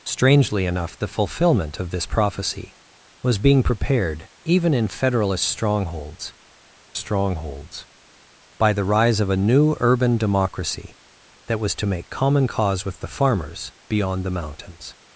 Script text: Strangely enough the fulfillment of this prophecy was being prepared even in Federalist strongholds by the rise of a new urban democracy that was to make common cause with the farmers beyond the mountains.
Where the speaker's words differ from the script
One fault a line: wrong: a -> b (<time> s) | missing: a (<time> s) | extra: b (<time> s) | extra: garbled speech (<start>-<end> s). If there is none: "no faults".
extra: strongholds (6.9 s)